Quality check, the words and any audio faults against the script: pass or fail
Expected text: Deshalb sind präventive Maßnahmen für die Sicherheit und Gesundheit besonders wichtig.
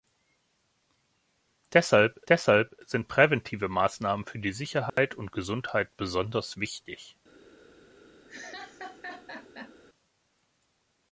fail